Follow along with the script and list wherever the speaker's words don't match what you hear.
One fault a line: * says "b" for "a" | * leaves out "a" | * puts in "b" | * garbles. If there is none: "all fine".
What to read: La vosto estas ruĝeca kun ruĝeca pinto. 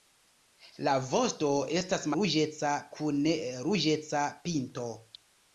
all fine